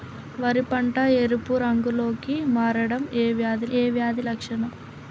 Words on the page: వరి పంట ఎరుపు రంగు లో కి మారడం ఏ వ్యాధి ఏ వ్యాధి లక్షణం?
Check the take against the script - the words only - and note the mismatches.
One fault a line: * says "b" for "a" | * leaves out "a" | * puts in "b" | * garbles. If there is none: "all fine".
all fine